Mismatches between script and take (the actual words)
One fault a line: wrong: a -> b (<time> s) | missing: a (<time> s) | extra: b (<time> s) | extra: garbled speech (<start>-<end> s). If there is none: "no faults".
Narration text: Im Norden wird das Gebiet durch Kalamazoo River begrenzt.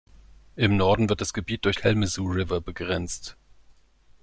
no faults